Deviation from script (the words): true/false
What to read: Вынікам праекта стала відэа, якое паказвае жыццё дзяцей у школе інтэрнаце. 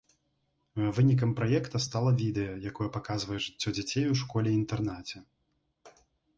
false